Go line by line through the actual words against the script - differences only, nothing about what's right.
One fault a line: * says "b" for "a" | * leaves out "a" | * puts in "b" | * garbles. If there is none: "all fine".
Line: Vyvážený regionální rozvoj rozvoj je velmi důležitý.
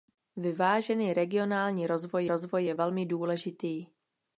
all fine